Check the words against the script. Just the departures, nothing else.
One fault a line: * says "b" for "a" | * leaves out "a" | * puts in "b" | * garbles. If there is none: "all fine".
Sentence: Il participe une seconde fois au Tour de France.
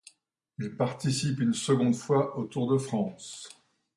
all fine